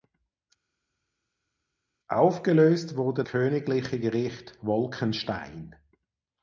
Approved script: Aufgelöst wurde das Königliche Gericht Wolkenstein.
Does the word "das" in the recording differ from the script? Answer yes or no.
yes